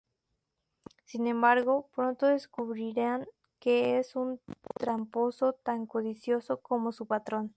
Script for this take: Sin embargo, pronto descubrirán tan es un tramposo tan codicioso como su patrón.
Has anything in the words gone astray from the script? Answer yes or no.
yes